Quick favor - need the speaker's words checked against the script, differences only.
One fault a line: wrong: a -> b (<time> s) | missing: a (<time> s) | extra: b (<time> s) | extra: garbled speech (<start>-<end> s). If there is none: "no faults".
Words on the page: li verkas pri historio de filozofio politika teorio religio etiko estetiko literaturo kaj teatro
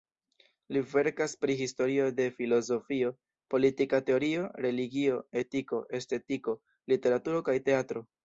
no faults